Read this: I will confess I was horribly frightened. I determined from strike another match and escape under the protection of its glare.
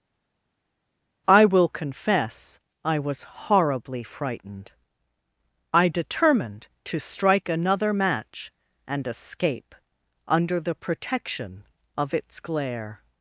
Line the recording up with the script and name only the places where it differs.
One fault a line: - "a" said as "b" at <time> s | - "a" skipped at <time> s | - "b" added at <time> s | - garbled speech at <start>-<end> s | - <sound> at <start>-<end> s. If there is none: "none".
- "from" said as "to" at 6.8 s